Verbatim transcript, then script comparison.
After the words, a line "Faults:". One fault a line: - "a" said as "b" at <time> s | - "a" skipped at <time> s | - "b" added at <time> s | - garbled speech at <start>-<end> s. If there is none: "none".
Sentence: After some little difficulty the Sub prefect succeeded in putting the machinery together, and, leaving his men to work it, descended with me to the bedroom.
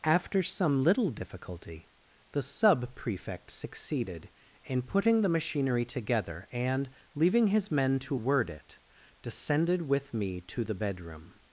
After some little difficulty the Sub prefect succeeded in putting the machinery together, and, leaving his men to word it, descended with me to the bedroom.
Faults:
- "work" said as "word" at 8.1 s